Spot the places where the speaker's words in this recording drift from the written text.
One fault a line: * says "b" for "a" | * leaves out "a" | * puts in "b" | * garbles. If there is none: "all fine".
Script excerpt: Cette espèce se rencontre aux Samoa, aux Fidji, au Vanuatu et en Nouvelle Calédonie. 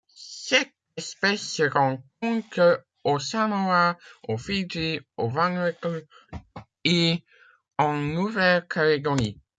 all fine